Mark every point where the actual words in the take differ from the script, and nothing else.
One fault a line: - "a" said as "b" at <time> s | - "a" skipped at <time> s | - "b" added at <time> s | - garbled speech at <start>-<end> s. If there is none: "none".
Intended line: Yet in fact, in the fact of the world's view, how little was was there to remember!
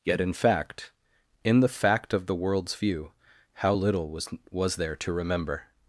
none